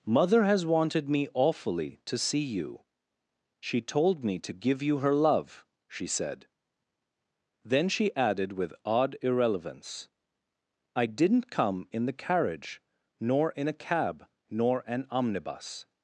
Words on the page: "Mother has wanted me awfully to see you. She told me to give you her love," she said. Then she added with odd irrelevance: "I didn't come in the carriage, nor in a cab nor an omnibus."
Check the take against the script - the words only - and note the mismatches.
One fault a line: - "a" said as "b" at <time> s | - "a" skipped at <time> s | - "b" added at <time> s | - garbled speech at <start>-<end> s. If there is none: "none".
none